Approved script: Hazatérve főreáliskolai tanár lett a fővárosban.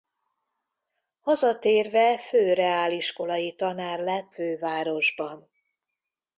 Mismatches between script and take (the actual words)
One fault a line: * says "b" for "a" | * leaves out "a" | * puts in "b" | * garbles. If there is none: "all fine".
* leaves out "a"